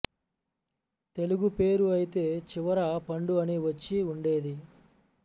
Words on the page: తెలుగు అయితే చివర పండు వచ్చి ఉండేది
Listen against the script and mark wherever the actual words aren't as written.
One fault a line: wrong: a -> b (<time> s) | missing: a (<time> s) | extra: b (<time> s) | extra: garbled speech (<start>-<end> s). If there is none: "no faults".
extra: పేరు (1.5 s)
extra: అని (3.4 s)